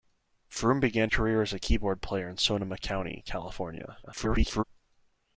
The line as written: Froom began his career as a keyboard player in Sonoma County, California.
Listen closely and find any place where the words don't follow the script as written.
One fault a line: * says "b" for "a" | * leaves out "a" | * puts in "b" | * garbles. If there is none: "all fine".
* leaves out "his"
* garbles